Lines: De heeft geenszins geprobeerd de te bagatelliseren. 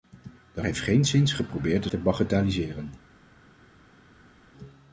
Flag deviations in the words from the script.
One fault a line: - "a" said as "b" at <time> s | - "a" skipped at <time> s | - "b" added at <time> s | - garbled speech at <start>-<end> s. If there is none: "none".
none